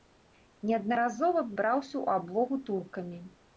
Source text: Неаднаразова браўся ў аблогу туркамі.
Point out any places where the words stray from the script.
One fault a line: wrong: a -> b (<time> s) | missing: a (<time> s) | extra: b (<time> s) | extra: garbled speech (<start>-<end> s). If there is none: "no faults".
no faults